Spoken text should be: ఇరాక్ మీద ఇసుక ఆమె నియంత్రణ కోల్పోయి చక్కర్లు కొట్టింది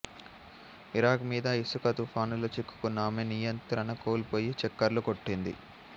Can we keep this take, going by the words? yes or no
no